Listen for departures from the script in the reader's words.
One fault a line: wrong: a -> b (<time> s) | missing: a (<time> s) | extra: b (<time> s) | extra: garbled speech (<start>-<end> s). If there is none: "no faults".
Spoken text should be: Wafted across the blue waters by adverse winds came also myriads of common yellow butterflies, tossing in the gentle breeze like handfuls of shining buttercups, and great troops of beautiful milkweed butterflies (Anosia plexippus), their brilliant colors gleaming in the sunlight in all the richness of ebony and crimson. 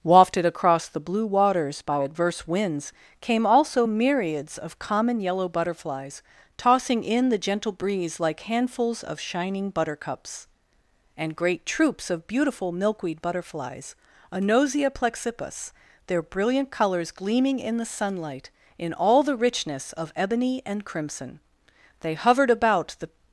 extra: They hovered about the (22.0 s)